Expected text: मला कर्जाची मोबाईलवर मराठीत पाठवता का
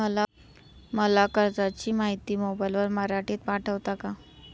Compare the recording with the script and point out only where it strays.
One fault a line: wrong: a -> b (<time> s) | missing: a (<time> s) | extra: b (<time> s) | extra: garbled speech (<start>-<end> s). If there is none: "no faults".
extra: माहिती (1.9 s)